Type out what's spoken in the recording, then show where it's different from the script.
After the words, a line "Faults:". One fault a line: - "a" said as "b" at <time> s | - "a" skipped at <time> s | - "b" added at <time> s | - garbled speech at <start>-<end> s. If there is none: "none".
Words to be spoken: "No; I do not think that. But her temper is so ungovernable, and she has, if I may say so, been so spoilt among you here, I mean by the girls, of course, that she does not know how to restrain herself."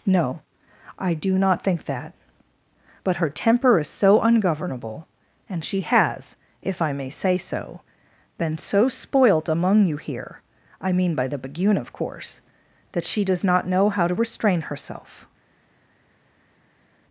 "No; I do not think that. But her temper is so ungovernable, and she has, if I may say so, been so spoilt among you here, I mean by the begune, of course, that she does not know how to restrain herself."
Faults:
- "girls" said as "begune" at 11.4 s